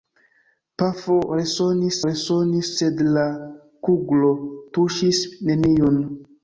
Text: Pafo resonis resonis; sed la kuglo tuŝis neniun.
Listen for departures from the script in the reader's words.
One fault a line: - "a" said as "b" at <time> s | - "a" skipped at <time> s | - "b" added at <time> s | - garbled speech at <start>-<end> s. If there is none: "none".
none